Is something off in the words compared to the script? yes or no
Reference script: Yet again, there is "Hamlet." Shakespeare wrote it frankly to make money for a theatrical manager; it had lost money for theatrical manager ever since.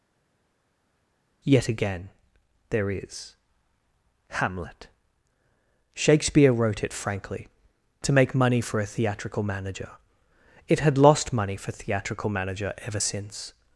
no